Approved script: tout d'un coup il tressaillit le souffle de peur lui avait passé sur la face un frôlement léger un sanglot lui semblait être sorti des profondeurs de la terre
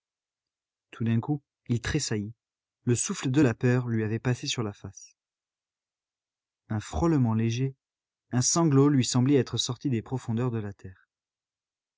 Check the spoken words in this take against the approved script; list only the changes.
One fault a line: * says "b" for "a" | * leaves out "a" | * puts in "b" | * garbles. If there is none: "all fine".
* puts in "la"